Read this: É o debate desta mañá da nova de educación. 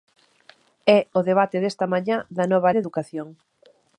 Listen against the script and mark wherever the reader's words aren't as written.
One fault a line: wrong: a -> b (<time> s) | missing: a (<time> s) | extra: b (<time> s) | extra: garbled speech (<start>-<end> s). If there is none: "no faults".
no faults